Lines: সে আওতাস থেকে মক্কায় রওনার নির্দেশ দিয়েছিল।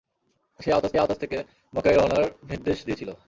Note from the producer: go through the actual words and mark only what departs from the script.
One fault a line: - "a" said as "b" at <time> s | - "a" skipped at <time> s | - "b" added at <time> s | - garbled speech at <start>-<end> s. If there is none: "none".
- "আওতাস" added at 1.0 s